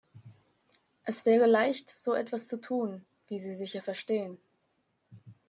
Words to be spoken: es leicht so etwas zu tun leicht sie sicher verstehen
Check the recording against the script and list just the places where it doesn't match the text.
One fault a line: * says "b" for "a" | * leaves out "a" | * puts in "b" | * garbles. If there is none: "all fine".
* puts in "wäre"
* says "wie" for "leicht"